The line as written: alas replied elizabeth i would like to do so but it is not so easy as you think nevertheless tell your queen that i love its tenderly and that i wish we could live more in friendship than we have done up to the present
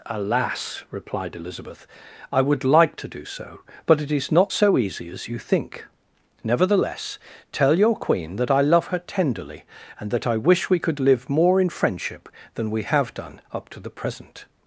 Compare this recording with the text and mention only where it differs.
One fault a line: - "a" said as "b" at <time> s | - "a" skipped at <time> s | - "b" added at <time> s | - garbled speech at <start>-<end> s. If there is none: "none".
- "its" said as "her" at 8.9 s